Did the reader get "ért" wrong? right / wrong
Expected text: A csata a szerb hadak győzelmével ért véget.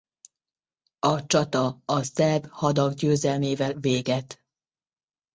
wrong